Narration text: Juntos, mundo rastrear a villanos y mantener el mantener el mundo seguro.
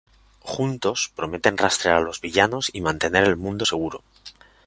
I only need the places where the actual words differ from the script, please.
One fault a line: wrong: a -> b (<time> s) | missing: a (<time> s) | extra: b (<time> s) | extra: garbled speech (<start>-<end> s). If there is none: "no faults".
wrong: mundo -> prometen (1.1 s)
extra: los (2.0 s)
missing: mantener el (3.4 s)